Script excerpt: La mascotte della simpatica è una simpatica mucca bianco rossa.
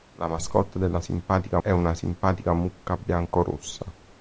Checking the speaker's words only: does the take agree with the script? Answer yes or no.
yes